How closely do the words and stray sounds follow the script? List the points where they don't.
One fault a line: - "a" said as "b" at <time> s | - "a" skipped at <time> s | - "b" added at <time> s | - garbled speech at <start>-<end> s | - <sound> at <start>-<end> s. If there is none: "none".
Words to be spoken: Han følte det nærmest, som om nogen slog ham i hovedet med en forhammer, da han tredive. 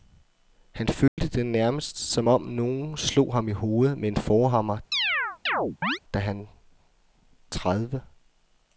- dropout at 1.1-1.2 s
- chirp at 4.9-6.0 s